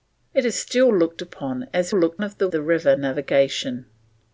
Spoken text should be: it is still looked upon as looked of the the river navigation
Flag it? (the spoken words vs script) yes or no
no